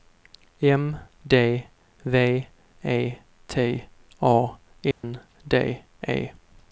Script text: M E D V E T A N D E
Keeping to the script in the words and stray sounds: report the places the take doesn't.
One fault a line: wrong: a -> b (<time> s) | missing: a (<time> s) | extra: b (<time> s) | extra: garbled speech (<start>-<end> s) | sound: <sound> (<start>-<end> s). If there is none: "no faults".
missing: E (1.0 s)
sound: dropout (4.9-5.0 s)